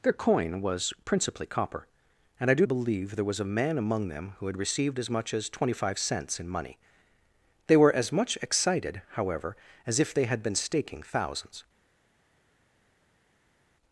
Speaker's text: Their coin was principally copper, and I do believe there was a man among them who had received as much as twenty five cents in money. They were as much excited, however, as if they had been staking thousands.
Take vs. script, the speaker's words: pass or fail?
pass